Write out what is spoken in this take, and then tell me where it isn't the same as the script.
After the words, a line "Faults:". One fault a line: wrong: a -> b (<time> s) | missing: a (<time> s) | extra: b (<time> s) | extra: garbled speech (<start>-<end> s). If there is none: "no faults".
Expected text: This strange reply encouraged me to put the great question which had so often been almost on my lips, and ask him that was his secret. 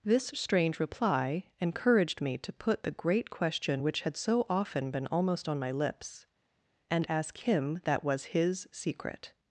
This strange reply encouraged me to put the great question which had so often been almost on my lips, and ask him that was his secret.
Faults:
no faults